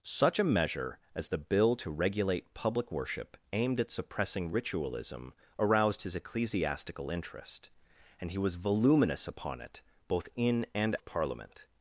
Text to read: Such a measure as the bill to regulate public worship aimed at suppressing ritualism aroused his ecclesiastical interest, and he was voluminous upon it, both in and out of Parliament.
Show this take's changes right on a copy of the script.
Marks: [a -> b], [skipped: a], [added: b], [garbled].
Such a measure as the bill to regulate public worship aimed at suppressing ritualism aroused his ecclesiastical interest, and he was voluminous upon it, both in and [skipped: out] of Parliament.